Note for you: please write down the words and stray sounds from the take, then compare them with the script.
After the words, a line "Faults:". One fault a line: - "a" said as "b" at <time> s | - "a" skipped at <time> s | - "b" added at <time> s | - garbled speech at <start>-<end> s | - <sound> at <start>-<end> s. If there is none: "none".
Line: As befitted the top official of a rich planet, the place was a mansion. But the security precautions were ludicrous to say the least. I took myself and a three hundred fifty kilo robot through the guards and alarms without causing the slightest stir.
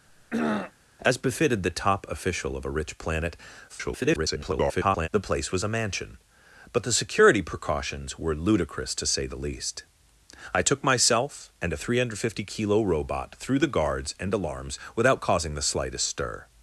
As befitted the top official of a rich planet, [garbled] the place was a mansion. But the security precautions were ludicrous to say the least. I took myself and a three hundred fifty kilo robot through the guards and alarms without causing the slightest stir.
Faults:
- throat clearing at 0.1-0.7 s
- garbled speech at 3.7-5.1 s